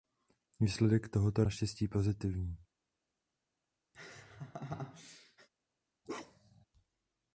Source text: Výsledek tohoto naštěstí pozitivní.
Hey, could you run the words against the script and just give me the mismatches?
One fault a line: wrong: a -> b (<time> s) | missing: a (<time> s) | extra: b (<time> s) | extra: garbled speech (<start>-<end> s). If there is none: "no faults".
no faults